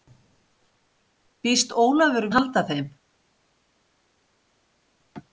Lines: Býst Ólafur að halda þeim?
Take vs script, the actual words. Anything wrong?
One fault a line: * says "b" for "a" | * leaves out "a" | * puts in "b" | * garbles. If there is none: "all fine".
all fine